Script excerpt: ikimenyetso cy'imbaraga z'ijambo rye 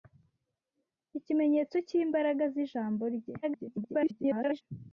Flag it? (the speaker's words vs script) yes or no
yes